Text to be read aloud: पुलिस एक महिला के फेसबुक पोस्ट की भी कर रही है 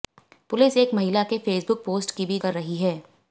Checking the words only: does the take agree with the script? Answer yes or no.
yes